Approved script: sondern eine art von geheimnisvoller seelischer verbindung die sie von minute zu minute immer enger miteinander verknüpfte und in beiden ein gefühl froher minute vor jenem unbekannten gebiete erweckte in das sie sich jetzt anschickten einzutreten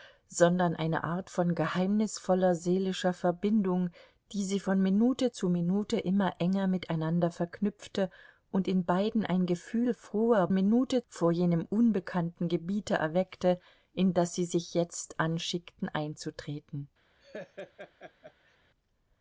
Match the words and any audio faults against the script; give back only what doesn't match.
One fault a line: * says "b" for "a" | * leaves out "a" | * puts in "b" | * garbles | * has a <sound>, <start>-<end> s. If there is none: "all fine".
* has a laugh, 17.2-18.6 s